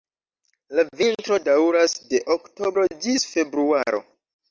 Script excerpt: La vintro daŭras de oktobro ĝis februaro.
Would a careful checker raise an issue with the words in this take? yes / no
no